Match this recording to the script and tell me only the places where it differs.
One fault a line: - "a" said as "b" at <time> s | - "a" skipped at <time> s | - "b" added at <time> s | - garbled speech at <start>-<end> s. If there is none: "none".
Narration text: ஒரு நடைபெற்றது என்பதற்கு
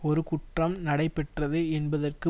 - "குற்றம்" added at 0.2 s